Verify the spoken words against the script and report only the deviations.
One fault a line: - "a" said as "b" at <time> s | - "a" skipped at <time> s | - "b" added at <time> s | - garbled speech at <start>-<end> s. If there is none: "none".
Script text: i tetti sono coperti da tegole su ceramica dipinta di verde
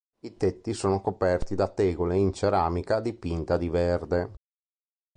- "su" said as "in" at 2.1 s